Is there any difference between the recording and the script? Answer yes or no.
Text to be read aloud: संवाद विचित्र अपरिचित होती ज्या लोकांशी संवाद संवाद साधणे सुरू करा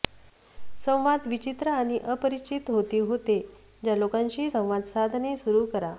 yes